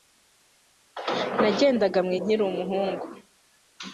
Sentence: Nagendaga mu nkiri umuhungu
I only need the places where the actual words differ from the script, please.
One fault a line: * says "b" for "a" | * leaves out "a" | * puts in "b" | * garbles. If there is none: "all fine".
all fine